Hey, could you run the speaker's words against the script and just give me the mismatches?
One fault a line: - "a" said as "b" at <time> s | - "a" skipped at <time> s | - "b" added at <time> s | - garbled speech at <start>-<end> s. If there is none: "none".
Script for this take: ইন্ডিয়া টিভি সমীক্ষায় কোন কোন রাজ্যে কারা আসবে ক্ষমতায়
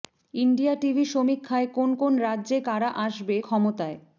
none